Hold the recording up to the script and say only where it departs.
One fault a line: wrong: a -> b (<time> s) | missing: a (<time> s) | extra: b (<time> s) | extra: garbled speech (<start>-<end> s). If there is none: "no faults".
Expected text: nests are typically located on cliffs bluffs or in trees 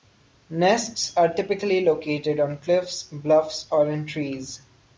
no faults